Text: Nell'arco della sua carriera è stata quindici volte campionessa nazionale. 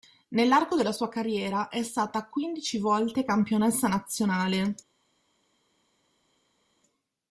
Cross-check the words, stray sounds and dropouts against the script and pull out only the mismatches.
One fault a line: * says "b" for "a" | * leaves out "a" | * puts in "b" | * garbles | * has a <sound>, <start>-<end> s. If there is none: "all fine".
all fine